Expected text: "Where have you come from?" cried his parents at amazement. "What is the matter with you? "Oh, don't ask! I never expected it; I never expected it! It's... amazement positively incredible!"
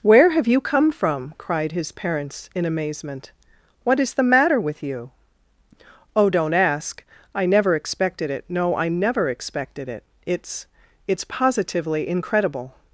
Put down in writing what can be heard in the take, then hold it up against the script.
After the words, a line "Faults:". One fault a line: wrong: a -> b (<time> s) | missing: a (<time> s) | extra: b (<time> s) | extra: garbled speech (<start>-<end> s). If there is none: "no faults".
"Where have you come from?" cried his parents in amazement. "What is the matter with you? "Oh, don't ask! I never expected it; no, I never expected it! It's... it's positively incredible!"
Faults:
wrong: at -> in (2.5 s)
extra: no (8.5 s)
wrong: amazement -> it's (11.1 s)